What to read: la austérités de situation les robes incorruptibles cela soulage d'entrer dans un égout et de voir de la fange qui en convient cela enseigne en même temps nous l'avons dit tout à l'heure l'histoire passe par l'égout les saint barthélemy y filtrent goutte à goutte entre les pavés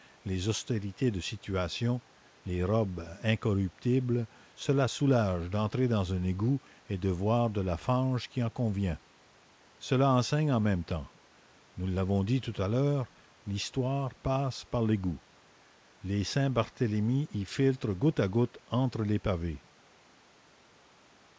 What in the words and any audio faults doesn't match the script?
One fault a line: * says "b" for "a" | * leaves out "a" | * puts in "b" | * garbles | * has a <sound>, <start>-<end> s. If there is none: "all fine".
* says "les" for "la"